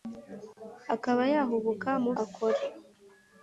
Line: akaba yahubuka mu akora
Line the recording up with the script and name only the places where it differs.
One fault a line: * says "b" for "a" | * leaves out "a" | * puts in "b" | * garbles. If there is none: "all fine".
all fine